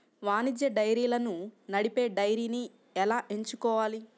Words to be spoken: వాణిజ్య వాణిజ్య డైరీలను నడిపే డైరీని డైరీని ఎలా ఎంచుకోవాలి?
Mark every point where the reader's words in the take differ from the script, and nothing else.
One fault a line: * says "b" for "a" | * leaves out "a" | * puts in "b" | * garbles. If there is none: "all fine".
* leaves out "వాణిజ్య"
* leaves out "డైరీని"